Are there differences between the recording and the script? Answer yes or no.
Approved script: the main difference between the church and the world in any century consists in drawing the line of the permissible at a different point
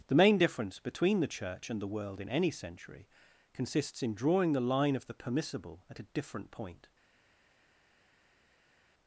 no